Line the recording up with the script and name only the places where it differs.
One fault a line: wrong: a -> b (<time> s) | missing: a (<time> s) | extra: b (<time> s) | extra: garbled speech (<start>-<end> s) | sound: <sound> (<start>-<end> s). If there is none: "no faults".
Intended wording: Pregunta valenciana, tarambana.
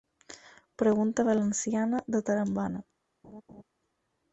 extra: de (2.0 s)
sound: laugh (3.2-3.6 s)